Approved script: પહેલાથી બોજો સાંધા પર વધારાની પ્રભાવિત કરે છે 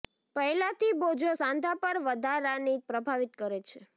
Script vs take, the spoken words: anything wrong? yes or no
no